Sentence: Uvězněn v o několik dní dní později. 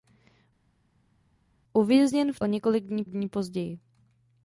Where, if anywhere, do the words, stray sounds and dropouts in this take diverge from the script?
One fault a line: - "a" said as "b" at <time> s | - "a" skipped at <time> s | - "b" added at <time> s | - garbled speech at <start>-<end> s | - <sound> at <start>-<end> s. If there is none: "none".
none